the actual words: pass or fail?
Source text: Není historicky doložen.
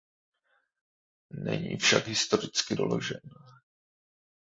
fail